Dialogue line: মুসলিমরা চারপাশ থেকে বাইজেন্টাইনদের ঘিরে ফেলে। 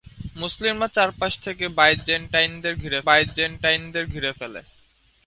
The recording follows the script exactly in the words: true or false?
false